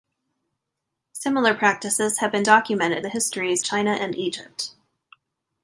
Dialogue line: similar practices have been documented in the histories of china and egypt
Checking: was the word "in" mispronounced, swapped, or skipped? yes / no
yes